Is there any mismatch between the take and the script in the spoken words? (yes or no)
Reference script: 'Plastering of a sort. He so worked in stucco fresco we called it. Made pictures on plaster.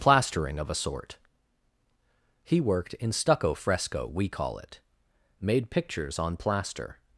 yes